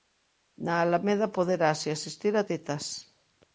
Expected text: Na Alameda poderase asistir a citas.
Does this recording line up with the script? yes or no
yes